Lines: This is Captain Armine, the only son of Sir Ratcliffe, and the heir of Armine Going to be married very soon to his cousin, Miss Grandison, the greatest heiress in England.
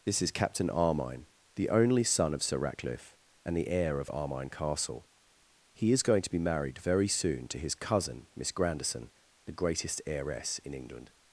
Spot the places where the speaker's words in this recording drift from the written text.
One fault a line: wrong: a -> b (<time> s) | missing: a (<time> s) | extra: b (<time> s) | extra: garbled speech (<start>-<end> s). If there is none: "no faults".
extra: Castle He is (4.5 s)